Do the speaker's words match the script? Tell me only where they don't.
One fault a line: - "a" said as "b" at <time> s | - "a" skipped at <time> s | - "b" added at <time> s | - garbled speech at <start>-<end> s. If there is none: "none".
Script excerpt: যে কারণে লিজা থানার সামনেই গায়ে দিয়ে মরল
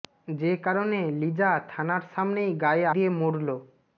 none